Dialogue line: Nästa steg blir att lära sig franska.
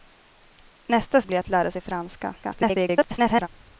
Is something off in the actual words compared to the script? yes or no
yes